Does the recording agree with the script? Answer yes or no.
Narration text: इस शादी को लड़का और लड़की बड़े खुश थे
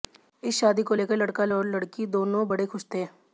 no